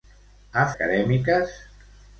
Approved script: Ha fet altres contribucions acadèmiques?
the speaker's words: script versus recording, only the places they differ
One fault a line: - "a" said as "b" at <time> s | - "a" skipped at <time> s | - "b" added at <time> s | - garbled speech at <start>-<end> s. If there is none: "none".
- "fet altres contribucions" skipped at 0.6 s